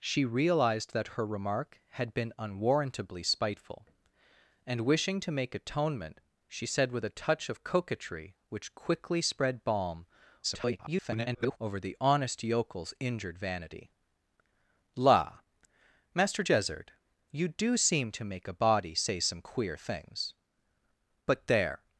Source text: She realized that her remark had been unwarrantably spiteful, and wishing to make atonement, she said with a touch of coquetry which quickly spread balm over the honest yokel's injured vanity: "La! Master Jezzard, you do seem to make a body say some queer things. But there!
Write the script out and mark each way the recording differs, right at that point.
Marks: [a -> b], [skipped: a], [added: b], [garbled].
She realized that her remark had been unwarrantably spiteful, and wishing to make atonement, she said with a touch of coquetry which quickly spread balm [garbled] over the honest yokel's injured vanity: "La! Master Jezzard, you do seem to make a body say some queer things. But there!